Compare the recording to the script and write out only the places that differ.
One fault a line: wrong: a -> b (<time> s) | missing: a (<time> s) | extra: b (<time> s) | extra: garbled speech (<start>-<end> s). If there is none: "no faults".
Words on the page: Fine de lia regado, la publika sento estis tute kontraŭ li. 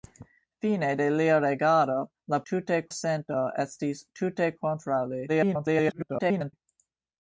wrong: publika -> tute (2.5 s)
extra: garbled speech (5.3-6.5 s)